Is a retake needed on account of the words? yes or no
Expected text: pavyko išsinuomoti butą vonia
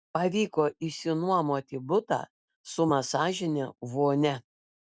yes